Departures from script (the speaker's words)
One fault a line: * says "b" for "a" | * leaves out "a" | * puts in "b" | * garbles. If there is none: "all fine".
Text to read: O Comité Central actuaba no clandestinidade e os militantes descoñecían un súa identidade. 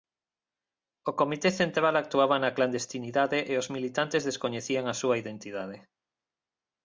* says "na" for "no"
* says "a" for "un"